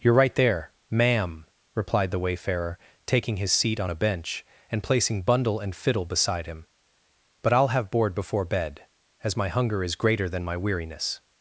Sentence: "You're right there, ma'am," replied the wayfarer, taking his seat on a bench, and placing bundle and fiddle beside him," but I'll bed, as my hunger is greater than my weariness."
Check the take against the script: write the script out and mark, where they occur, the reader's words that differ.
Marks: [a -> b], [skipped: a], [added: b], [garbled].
"You're right there, ma'am," replied the wayfarer, taking his seat on a bench, and placing bundle and fiddle beside him," but I'll [added: have board before] bed, as my hunger is greater than my weariness."